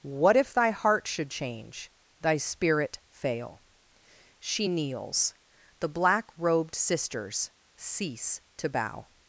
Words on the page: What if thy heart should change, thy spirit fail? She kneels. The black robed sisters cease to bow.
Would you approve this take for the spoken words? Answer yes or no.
yes